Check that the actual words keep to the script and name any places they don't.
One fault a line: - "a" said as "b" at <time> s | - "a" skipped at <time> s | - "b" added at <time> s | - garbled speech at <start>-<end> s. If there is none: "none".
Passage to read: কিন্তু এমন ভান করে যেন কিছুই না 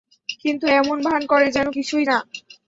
none